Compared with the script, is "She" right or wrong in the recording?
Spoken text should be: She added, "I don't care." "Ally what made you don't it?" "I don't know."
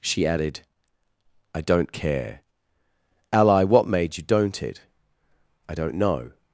right